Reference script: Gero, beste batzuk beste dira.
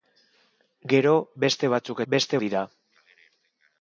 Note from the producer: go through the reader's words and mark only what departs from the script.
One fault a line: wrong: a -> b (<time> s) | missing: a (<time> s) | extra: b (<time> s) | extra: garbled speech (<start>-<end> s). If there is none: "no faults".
no faults